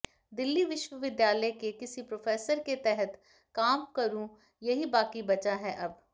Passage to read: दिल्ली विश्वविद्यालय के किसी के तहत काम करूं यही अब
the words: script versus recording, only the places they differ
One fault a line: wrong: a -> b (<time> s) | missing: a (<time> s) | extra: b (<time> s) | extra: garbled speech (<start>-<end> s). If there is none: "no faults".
extra: प्रोफेसर (2.0 s)
extra: बाकी बचा है (4.9 s)